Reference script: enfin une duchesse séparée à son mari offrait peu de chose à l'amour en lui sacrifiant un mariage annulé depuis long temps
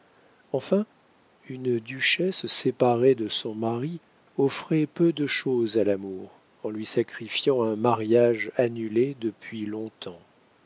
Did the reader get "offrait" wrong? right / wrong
right